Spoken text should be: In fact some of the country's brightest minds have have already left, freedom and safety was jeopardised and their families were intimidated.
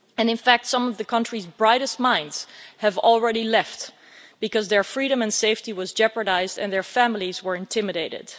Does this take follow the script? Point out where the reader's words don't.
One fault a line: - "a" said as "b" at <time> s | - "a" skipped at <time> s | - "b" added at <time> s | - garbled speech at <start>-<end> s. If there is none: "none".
- "have" skipped at 3.0 s
- "because their" added at 4.4 s